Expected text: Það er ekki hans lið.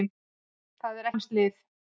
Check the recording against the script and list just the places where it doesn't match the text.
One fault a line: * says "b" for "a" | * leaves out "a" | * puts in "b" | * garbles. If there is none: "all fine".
* leaves out "ekki"